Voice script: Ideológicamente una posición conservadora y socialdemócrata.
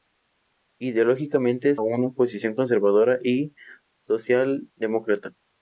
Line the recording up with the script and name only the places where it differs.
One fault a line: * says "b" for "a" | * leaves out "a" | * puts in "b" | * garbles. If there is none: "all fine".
all fine